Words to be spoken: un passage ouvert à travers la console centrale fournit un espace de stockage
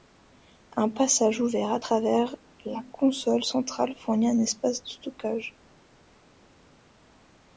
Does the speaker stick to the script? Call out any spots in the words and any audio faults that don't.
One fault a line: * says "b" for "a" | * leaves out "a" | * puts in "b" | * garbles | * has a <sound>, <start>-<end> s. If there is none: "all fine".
all fine